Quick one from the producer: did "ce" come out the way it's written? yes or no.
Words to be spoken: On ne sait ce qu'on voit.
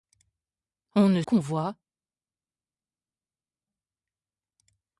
no